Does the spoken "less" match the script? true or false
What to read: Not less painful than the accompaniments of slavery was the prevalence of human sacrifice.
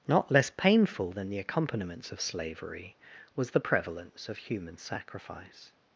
true